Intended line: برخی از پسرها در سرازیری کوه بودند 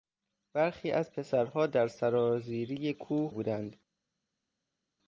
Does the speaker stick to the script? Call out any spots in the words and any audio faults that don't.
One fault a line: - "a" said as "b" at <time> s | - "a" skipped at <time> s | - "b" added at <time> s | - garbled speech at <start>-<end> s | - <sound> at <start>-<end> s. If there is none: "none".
none